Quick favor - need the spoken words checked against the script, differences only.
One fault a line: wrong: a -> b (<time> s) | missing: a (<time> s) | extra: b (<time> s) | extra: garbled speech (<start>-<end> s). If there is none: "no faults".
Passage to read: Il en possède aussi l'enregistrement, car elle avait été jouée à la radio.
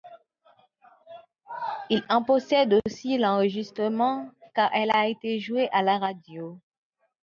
wrong: avait -> a (5.0 s)